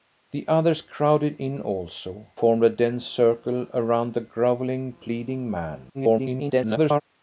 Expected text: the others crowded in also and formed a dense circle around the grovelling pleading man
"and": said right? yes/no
no